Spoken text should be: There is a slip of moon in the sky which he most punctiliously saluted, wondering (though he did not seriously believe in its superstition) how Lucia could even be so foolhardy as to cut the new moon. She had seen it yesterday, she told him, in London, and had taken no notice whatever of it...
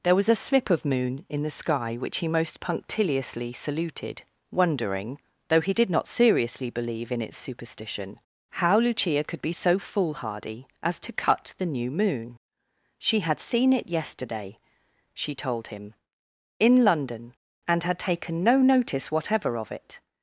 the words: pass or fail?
fail